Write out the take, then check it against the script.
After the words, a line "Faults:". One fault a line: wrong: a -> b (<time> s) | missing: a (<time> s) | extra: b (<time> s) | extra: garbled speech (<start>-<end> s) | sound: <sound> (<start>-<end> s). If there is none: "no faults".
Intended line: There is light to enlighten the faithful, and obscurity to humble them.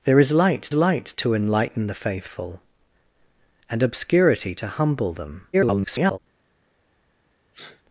There is light light to enlighten the faithful, and obscurity to humble them. [garbled]
Faults:
extra: light (0.7 s)
extra: garbled speech (5.5-6.2 s)
sound: sneeze (7.5-7.8 s)